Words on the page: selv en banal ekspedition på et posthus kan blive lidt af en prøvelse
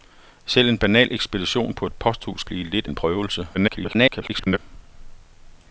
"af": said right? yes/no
no